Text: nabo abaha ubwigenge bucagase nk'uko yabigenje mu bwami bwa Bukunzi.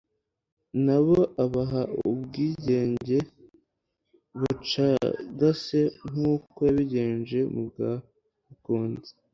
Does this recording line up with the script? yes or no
no